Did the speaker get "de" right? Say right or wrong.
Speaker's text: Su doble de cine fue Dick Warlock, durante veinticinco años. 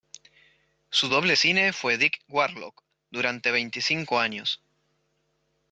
wrong